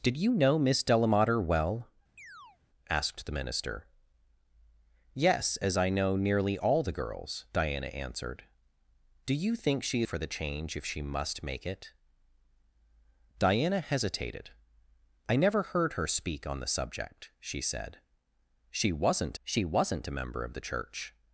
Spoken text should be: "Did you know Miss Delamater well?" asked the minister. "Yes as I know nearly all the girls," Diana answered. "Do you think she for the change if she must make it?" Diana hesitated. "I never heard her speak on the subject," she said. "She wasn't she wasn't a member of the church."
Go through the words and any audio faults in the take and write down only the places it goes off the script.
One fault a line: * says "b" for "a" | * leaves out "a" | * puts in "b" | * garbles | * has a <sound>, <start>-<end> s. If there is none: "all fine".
* has a chirp, 2.2-2.6 s